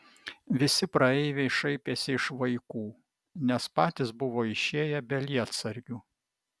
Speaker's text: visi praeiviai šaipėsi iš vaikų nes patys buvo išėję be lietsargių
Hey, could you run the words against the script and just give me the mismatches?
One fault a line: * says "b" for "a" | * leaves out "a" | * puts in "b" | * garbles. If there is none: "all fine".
all fine